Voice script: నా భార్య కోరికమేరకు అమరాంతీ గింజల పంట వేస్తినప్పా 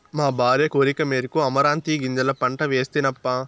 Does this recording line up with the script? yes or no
no